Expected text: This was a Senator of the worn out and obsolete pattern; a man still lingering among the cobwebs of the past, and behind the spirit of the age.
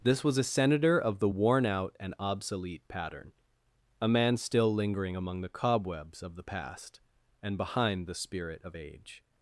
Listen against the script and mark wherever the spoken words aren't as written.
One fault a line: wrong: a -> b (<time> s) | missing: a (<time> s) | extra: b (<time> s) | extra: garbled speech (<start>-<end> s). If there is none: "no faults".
missing: the (8.8 s)